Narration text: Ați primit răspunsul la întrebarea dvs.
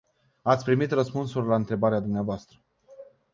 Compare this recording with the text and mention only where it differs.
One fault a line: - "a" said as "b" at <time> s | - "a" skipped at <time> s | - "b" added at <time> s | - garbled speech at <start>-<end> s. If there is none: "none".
none